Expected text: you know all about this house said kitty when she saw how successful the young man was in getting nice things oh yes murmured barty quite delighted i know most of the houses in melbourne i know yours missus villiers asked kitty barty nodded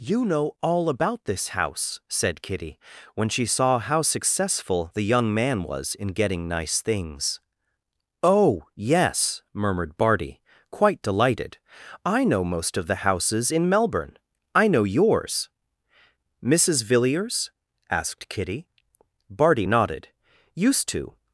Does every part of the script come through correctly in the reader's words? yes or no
no